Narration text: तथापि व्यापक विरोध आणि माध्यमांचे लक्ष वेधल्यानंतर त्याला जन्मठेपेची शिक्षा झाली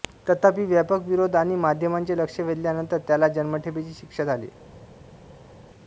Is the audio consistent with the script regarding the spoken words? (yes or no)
yes